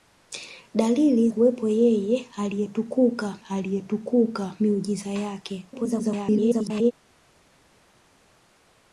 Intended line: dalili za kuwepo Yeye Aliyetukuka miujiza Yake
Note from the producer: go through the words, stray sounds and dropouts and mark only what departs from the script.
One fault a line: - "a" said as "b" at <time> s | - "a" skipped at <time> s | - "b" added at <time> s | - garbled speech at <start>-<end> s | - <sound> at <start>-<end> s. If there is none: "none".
- "za" skipped at 1.3 s
- "Aliyetukuka" added at 3.5 s
- garbled speech at 5.7-6.9 s